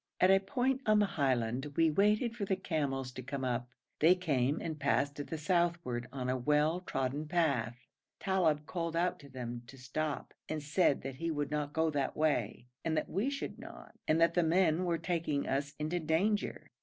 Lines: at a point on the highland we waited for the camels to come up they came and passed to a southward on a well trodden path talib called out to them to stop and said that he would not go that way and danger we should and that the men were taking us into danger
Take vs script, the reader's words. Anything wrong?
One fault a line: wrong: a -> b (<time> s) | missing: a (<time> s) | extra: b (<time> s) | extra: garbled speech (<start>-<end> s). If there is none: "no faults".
wrong: a -> the (5.2 s)
wrong: danger -> that (13.0 s)
extra: not (13.6 s)